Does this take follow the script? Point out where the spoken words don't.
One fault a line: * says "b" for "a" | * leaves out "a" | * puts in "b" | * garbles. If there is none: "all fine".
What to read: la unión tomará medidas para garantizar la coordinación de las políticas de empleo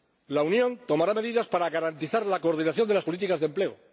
all fine